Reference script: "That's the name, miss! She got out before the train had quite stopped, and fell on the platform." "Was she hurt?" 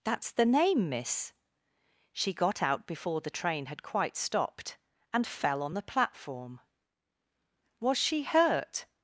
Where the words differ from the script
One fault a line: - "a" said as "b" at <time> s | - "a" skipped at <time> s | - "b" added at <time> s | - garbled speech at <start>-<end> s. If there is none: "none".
none